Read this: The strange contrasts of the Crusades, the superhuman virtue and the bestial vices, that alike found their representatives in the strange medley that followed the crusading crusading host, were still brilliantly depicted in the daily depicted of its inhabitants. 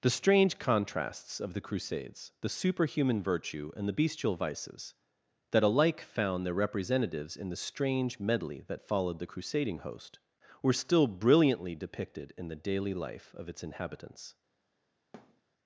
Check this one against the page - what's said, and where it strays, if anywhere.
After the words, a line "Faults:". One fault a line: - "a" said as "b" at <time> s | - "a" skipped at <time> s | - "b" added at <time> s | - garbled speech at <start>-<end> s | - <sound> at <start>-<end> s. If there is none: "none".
The strange contrasts of the Crusades, the superhuman virtue and the bestial vices, that alike found their representatives in the strange medley that followed the crusading host, were still brilliantly depicted in the daily life of its inhabitants.
Faults:
- "crusading" skipped at 9.8 s
- "depicted" said as "life" at 12.9 s
- thud at 15.1-15.4 s